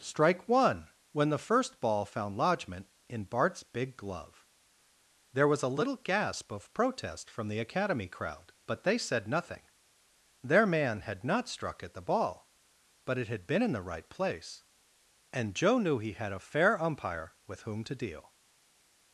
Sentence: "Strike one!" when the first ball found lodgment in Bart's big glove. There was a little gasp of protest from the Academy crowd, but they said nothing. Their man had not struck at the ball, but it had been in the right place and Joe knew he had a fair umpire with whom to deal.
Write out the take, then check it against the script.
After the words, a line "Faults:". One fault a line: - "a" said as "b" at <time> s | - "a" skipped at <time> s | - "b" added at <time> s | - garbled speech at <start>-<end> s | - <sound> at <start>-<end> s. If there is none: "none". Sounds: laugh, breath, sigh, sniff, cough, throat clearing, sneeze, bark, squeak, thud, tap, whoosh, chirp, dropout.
"Strike one!" when the first ball found lodgment in Bart's big glove. There was a little gasp of protest from the Academy crowd, but they said nothing. Their man had not struck at the ball, but it had been in the right place and Joe knew he had a fair umpire with whom to deal.
Faults:
none